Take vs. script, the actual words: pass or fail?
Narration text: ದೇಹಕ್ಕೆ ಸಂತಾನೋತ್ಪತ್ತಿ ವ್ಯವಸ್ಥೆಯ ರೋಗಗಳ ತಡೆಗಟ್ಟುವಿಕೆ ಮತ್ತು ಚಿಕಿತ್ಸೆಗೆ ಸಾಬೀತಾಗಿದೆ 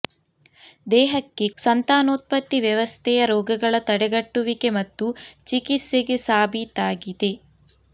pass